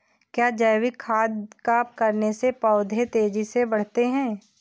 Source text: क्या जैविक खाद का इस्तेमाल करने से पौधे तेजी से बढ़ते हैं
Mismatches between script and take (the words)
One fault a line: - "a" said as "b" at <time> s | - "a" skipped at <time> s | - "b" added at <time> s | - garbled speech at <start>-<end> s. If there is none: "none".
- "इस्तेमाल" skipped at 1.8 s